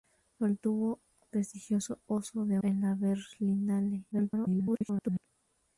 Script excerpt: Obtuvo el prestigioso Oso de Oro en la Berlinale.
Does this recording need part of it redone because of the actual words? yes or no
yes